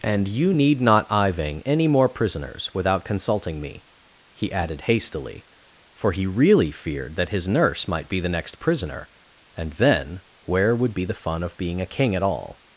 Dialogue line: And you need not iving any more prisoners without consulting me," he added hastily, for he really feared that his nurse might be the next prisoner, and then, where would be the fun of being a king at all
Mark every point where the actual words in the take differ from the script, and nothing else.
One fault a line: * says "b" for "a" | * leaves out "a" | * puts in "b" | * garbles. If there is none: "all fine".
all fine